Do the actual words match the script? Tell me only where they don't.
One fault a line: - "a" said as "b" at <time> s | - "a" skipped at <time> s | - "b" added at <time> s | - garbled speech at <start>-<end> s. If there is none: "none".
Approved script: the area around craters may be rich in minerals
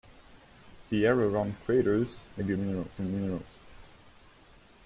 - "rich" said as "minerals" at 2.6 s